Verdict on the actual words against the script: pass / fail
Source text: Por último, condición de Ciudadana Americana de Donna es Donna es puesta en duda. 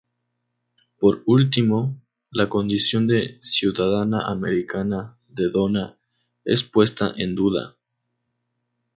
fail